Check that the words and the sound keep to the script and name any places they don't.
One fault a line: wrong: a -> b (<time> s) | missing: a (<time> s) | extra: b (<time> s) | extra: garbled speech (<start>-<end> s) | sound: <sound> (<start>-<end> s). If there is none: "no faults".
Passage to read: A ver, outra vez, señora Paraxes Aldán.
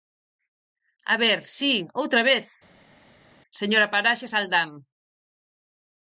extra: si (1.6 s)